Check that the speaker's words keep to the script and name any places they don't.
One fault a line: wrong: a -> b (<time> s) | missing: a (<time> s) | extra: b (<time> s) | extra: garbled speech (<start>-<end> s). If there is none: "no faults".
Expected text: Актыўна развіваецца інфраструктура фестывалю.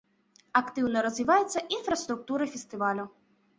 no faults